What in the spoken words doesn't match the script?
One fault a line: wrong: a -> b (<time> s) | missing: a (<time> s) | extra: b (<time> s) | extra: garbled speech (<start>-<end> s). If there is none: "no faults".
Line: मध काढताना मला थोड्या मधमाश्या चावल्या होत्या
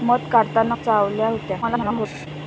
missing: मला थोड्या मधमाश्या (0.8 s)
extra: garbled speech (1.6-2.3 s)